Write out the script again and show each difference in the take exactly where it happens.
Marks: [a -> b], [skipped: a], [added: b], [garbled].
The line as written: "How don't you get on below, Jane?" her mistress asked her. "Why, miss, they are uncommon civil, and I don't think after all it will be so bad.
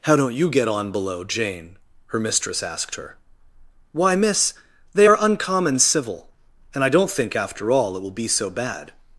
"How don't you get on below, Jane?" her mistress asked her. "Why, miss, they are uncommon civil, and I don't think after all it will be so bad.